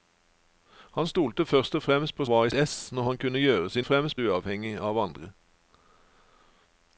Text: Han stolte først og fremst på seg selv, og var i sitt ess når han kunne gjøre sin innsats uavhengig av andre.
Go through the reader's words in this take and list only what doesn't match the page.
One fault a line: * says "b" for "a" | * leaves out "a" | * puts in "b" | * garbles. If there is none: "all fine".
* leaves out "seg selv og"
* leaves out "sitt"
* says "fremst" for "innsats"